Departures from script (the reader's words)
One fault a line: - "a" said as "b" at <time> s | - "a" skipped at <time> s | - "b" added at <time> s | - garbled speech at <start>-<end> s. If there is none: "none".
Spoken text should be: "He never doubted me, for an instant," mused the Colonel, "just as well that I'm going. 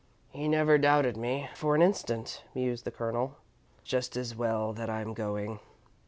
none